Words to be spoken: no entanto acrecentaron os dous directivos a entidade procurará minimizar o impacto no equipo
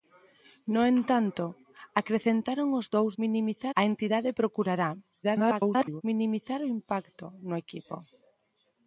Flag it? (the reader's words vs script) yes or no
yes